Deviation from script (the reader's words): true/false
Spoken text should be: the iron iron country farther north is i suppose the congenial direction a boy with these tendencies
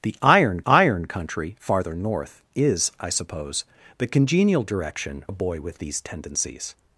false